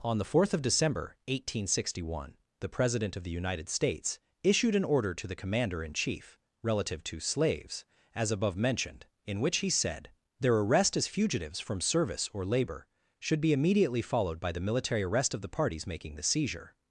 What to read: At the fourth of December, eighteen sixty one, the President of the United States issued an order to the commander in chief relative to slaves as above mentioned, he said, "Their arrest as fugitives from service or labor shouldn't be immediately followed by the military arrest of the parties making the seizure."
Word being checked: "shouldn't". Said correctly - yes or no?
no